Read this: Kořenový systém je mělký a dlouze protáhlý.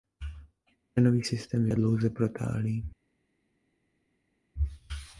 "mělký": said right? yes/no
no